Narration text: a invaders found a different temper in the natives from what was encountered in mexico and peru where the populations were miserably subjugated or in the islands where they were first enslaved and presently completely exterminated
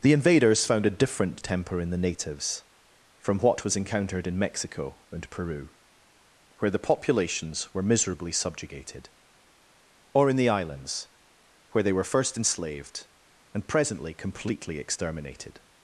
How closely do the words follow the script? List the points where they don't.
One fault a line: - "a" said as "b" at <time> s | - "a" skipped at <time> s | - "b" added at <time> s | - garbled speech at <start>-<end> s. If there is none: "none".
- "a" said as "the" at 0.0 s